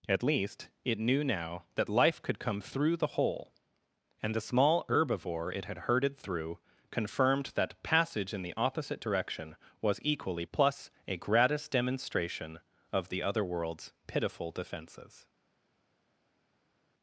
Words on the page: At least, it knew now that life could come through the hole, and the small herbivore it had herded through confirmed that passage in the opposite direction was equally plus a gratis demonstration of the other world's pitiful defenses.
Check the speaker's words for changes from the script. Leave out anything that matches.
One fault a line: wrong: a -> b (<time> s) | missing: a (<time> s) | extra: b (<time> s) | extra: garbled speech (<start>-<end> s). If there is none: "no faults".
no faults